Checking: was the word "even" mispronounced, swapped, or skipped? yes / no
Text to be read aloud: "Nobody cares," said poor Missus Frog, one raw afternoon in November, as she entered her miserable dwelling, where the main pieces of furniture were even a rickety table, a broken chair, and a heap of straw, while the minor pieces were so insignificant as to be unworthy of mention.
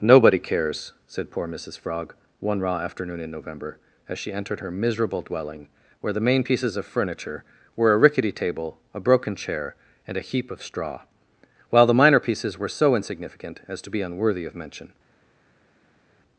yes